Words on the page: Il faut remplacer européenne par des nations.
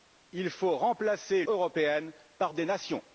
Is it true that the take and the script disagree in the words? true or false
false